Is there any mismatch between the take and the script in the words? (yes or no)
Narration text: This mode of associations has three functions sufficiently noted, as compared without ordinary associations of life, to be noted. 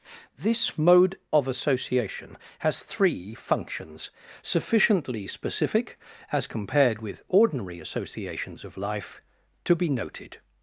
yes